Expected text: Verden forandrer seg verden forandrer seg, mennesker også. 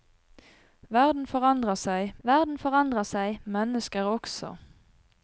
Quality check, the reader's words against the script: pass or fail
pass